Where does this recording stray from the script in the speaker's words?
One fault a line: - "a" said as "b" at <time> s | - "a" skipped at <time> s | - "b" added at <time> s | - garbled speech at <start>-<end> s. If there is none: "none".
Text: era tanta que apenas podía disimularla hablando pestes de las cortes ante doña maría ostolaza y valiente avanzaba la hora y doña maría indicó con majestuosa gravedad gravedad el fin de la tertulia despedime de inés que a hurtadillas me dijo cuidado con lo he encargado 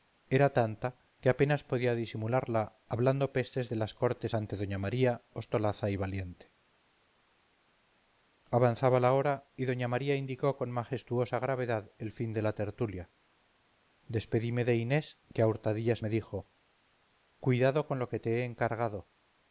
- "gravedad" skipped at 11.9 s
- "que te" added at 18.1 s